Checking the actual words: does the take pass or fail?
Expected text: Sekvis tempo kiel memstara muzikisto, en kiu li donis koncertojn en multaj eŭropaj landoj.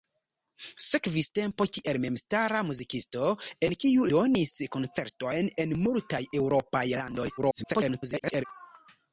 fail